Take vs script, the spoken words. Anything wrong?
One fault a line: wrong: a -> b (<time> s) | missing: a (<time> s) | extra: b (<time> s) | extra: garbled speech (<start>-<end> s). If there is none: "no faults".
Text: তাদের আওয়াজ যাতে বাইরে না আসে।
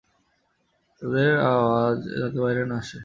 no faults